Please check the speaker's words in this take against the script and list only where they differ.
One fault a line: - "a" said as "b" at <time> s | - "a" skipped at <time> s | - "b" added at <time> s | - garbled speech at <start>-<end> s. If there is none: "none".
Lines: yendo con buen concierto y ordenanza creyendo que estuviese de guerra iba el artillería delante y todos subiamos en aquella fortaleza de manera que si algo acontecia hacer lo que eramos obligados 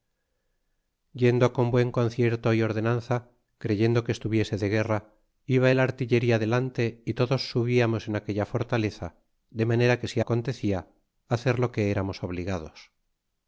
- "algo" skipped at 10.2 s